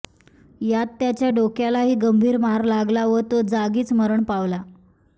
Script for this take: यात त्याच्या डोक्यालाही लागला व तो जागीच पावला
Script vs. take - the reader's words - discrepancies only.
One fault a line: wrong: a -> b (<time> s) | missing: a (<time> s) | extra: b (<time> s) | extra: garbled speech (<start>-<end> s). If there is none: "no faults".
extra: गंभीर मार (1.9 s)
extra: मरण (3.9 s)